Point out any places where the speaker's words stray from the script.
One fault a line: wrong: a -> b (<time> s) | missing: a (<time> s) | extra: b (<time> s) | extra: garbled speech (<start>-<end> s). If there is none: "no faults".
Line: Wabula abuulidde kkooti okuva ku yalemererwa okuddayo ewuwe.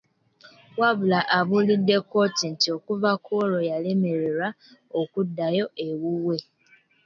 extra: nti (2.5 s)
extra: olwo (3.4 s)